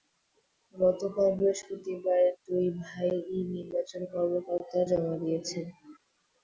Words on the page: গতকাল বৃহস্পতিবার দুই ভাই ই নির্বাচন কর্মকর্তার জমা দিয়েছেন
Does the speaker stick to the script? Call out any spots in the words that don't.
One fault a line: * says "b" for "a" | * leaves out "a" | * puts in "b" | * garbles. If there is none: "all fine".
all fine